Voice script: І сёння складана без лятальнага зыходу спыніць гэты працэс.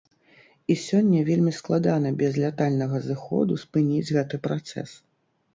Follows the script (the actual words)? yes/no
no